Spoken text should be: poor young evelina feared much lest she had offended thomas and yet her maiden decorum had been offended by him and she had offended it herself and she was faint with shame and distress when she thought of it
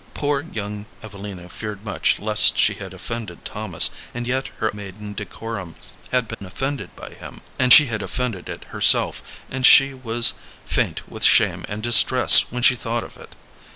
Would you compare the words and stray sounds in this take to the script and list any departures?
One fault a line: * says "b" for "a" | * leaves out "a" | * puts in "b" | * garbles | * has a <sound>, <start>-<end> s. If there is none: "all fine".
* has a dropout, 6.3-6.4 s